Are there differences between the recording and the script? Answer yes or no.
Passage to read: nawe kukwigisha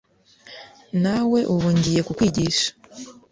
yes